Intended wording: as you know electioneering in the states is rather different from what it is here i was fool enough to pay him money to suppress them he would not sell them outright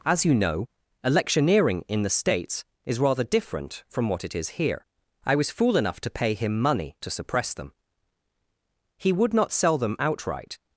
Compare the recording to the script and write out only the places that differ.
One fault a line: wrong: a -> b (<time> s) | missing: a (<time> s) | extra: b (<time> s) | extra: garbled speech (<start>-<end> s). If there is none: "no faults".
no faults